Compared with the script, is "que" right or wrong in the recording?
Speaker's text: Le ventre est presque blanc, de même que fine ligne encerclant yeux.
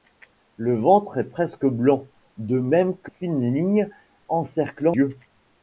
right